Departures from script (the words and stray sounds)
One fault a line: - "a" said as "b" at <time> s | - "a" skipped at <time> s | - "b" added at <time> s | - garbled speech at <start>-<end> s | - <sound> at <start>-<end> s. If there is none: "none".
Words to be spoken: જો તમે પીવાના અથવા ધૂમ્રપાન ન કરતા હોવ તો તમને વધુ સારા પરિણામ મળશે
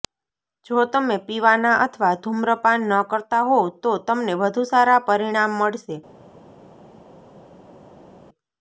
none